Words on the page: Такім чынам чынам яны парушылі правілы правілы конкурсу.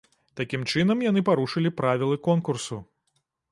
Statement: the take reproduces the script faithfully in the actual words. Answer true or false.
false